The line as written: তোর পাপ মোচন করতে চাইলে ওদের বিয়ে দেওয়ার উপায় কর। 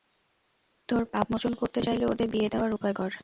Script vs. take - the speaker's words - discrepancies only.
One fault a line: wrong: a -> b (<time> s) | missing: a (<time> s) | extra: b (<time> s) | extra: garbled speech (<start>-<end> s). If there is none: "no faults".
no faults